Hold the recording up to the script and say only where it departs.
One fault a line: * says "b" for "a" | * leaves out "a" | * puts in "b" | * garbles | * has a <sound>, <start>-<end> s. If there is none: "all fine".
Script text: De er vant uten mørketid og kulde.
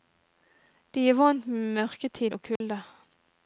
* says "med" for "uten"
* has a dropout, 2.6-2.6 s